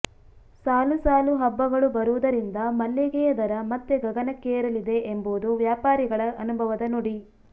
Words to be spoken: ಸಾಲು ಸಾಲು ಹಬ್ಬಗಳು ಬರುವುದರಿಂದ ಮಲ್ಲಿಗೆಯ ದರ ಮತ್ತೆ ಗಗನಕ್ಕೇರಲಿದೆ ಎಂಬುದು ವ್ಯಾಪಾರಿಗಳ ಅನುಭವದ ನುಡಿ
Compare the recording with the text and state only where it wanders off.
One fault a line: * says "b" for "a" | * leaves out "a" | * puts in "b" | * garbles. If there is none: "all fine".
all fine